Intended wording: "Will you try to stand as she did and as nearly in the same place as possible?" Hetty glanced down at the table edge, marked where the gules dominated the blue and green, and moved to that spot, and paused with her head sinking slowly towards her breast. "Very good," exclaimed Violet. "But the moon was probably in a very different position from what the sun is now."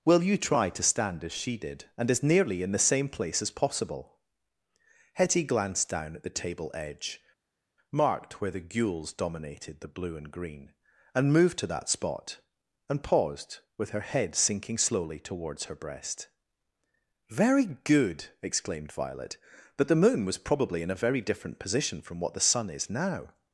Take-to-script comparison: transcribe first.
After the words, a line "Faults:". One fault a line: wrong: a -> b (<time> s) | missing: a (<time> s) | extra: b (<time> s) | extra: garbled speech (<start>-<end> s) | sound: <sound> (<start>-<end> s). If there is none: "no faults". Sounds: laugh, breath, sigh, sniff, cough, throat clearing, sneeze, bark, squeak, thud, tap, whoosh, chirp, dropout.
"Will you try to stand as she did and as nearly in the same place as possible?" Hetty glanced down at the table edge, marked where the gules dominated the blue and green, and moved to that spot, and paused with her head sinking slowly towards her breast. "Very good," exclaimed Violet. "But the moon was probably in a very different position from what the sun is now."
Faults:
no faults